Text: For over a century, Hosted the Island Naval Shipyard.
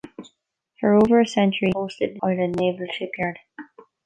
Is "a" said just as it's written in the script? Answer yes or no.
yes